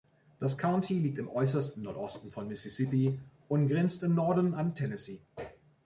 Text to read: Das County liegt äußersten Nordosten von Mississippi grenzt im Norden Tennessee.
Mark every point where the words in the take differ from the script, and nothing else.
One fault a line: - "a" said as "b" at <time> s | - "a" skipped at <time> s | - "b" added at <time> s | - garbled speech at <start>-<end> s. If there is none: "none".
- "im" added at 1.2 s
- "und" added at 3.5 s
- "an" added at 4.5 s